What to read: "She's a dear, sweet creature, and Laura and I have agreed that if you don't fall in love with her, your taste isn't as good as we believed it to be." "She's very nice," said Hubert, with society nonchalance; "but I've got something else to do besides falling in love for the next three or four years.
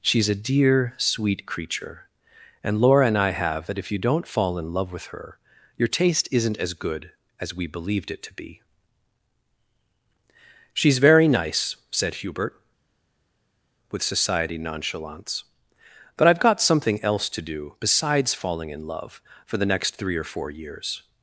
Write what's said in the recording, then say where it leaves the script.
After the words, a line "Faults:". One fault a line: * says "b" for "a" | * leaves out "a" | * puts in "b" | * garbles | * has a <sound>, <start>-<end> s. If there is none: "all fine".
"She's a dear, sweet creature, and Laura and I have that if you don't fall in love with her, your taste isn't as good as we believed it to be." "She's very nice," said Hubert, with society nonchalance; "but I've got something else to do besides falling in love for the next three or four years.
Faults:
* leaves out "agreed"